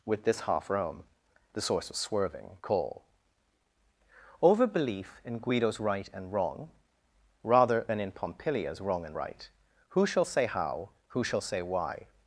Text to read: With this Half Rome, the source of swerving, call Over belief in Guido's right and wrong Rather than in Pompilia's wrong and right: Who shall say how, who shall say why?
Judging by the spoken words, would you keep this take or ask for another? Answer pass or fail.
pass